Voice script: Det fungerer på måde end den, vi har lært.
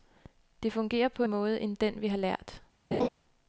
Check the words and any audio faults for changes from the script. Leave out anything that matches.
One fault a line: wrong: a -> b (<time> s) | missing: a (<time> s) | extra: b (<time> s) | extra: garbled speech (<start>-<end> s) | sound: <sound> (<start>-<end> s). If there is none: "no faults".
sound: laugh (2.9-3.1 s)